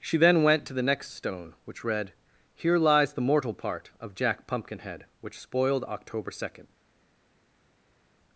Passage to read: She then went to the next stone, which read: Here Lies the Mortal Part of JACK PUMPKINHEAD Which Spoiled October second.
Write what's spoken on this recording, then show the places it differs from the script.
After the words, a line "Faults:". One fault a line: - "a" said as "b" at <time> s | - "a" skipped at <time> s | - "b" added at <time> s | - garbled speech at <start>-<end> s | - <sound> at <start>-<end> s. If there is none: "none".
She then went to the next stone, which read: Here Lies the Mortal Part of JACK PUMPKINHEAD Which Spoiled October second.
Faults:
none